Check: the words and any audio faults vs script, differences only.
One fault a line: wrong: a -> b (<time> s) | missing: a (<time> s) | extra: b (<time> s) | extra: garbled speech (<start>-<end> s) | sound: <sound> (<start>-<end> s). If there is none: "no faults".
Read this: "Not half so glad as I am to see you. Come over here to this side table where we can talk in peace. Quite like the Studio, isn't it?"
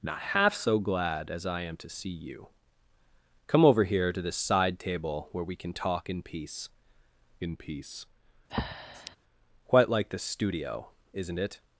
extra: in peace (7.4 s)
sound: breath (8.5-9.2 s)